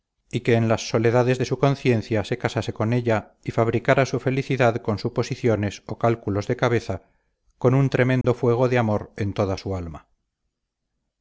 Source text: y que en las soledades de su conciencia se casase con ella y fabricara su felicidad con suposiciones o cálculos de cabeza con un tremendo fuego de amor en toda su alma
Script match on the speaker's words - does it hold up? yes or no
yes